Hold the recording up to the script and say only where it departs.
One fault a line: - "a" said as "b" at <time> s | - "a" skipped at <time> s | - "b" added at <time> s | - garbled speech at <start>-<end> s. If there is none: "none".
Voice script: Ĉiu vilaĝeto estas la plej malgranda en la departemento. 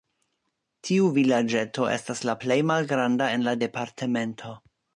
- "Ĉiu" said as "Tiu" at 0.9 s